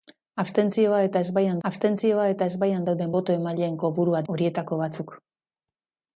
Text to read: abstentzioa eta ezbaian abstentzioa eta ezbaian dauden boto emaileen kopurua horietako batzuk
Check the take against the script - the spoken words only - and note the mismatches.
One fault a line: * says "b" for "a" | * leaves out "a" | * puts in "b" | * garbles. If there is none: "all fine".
all fine